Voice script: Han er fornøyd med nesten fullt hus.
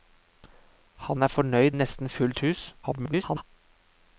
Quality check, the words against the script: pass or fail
fail